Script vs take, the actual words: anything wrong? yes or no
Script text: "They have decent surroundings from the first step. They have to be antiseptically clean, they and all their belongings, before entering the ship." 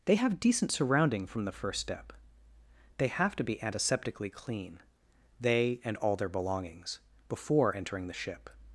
yes